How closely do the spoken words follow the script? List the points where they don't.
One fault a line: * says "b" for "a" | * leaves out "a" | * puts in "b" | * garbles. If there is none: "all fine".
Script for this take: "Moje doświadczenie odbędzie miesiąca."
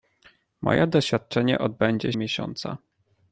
all fine